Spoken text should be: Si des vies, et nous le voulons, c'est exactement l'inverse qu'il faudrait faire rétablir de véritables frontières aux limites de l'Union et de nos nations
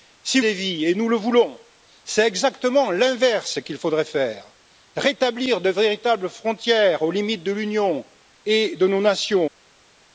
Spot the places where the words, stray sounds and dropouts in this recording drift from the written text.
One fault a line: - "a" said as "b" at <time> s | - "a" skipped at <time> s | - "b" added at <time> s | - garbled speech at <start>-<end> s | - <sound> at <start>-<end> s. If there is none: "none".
none